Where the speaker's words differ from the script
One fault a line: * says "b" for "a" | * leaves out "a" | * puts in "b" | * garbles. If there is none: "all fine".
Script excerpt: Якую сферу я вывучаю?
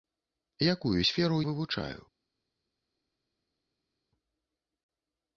* leaves out "я"